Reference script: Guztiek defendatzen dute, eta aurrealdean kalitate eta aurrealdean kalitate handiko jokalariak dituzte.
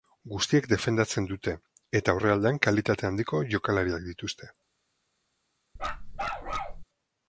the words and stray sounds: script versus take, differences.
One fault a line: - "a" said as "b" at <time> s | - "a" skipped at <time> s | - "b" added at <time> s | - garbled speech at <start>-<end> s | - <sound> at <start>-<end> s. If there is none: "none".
- "eta aurrealdean kalitate" skipped at 3.1 s
- bark at 5.8-6.8 s